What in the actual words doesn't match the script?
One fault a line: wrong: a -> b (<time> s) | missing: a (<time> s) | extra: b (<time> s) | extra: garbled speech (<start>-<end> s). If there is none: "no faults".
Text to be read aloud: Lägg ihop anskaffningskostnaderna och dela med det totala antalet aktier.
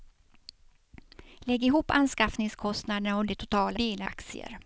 missing: dela med (3.2 s)
wrong: antalet -> dela (3.7 s)